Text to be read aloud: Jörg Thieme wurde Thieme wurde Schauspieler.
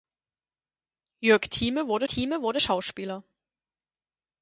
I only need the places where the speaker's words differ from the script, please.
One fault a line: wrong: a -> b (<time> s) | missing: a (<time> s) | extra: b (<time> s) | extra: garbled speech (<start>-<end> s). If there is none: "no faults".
no faults